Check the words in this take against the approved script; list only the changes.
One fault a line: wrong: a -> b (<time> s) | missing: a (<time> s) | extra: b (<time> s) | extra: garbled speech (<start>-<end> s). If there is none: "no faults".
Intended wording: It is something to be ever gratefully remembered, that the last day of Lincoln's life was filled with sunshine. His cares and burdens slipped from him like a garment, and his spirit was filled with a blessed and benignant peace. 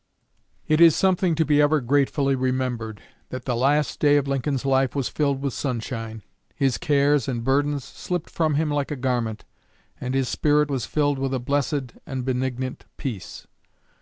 no faults